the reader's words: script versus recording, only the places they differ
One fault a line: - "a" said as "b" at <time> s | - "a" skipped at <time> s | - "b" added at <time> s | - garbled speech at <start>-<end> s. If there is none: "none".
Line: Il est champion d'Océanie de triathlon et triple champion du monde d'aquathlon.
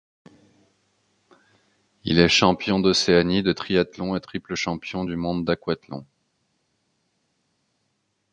none